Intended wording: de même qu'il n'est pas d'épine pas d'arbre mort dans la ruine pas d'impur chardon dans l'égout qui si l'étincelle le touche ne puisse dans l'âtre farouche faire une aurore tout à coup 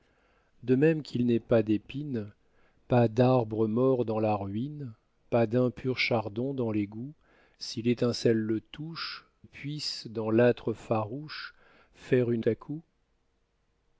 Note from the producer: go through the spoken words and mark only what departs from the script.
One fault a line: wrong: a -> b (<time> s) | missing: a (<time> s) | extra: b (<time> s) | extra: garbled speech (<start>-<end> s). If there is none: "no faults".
missing: qui (7.1 s)
missing: ne (9.3 s)
missing: aurore tout (12.4 s)